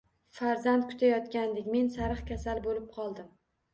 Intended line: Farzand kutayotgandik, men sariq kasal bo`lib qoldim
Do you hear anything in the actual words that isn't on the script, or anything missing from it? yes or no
no